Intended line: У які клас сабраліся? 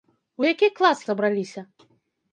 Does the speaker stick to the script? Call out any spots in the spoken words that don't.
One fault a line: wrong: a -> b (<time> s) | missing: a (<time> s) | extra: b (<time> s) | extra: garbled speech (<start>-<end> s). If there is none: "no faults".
no faults